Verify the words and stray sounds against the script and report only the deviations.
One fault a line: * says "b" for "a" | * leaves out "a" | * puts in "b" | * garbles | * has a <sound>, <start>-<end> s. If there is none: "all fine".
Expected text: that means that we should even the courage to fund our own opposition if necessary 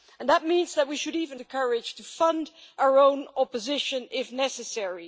all fine